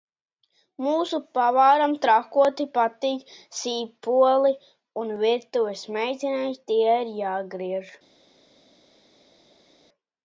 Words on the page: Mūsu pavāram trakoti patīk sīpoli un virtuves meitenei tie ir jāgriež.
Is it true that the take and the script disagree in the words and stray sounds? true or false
false